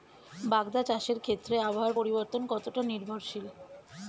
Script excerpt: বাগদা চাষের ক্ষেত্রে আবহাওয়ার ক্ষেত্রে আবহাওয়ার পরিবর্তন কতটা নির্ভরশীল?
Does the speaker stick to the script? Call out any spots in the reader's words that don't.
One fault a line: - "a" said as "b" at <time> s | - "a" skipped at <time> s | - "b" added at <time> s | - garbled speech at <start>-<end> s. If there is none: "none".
- "ক্ষেত্রে আবহাওয়ার" skipped at 2.0 s